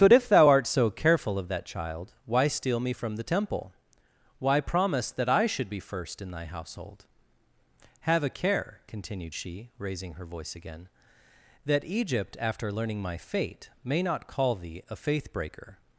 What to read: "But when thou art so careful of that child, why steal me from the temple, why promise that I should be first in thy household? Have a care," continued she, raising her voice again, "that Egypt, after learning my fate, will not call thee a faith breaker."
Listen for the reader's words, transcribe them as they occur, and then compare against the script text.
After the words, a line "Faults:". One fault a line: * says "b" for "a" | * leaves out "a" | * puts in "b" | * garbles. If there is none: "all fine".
"But if thou art so careful of that child, why steal me from the temple, why promise that I should be first in thy household? Have a care," continued she, raising her voice again, "that Egypt, after learning my fate, may not call thee a faith breaker."
Faults:
* says "if" for "when"
* says "may" for "will"